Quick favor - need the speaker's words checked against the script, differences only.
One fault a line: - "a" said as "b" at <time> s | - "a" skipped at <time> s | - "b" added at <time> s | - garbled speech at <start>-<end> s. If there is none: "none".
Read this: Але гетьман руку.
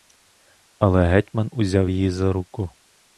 - "узяв її за" added at 1.5 s